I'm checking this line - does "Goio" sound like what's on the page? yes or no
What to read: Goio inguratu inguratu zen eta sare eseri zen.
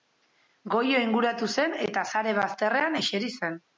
yes